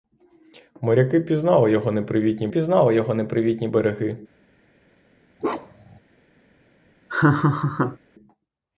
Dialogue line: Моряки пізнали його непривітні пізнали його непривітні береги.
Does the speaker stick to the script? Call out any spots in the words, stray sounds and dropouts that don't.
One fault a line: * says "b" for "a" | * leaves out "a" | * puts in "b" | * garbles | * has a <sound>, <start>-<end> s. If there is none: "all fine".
* has a bark, 5.4-6.0 s
* has a laugh, 7.1-8.0 s